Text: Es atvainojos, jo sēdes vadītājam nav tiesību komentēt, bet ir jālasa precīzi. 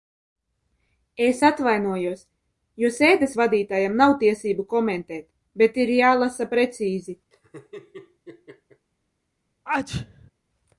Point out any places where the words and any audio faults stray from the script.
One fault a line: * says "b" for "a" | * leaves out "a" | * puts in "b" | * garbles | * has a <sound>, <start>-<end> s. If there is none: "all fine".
* has a laugh, 7.3-8.9 s
* has a sneeze, 9.7-10.3 s